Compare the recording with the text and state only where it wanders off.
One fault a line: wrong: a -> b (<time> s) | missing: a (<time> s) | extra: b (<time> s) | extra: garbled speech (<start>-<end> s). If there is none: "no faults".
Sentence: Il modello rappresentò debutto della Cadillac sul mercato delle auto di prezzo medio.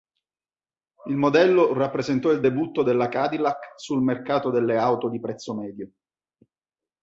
extra: il (2.3 s)